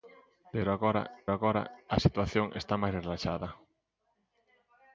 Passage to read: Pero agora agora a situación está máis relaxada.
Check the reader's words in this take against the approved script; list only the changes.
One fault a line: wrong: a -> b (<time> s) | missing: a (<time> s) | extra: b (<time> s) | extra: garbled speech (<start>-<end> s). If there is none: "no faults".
no faults